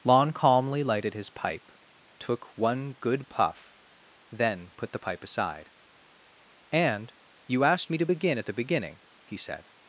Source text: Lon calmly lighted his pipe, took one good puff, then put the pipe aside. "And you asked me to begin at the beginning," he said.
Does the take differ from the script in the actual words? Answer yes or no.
no